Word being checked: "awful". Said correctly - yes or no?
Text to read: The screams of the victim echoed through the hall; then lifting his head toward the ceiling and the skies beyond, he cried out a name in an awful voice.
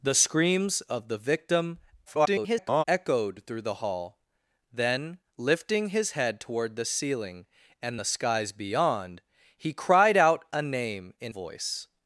no